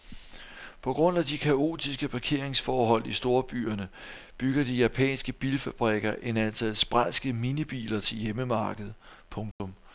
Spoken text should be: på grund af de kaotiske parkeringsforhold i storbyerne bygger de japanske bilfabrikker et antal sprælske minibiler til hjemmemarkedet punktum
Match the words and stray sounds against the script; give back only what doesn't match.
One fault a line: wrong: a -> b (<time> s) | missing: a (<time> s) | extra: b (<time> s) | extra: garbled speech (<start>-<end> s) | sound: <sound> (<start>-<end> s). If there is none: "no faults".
sound: dropout (9.5-9.6 s)